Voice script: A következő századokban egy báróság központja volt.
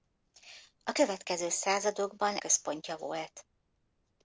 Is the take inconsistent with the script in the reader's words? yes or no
yes